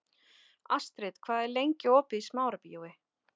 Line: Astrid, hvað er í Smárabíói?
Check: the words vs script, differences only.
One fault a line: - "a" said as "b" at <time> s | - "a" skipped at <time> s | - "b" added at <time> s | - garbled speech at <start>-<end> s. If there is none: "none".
- "lengi opið" added at 1.6 s